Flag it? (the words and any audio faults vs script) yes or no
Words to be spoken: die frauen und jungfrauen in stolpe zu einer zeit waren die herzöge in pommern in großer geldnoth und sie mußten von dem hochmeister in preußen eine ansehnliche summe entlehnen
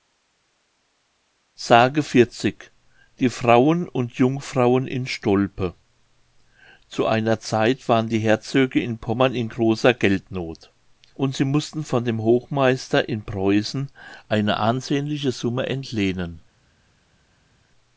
no